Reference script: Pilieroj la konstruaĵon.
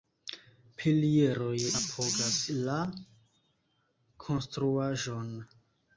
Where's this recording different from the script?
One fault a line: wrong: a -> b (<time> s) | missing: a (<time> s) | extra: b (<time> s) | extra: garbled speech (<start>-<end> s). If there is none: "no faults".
extra: apogas (1.8 s)